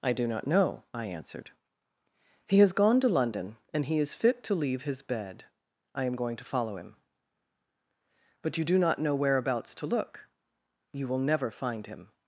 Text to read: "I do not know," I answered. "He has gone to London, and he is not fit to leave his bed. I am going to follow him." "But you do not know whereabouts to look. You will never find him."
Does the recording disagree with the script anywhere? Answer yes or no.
yes